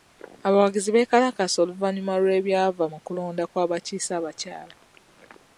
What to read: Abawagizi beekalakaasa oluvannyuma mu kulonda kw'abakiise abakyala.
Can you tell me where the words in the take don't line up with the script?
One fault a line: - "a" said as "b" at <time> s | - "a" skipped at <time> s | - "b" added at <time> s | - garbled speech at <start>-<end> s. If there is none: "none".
- "lw'ebyava" added at 2.2 s